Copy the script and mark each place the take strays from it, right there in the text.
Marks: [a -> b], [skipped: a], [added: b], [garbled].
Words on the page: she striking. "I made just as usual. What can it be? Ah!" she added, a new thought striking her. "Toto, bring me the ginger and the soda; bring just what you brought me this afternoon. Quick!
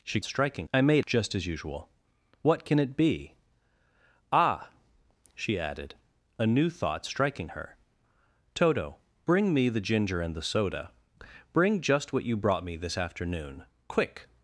she striking. "I made just as usual. What can it be? Ah!" she added, a new thought striking her. "Toto, bring me the ginger and the soda; bring just what you brought me this afternoon. Quick!